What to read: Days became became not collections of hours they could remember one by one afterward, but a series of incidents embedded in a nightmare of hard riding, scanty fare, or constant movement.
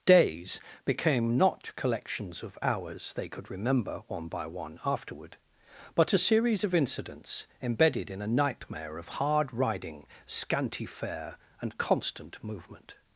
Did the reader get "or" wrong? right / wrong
wrong